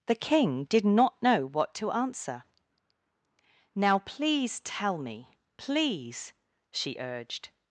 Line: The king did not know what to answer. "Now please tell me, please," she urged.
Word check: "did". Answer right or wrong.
right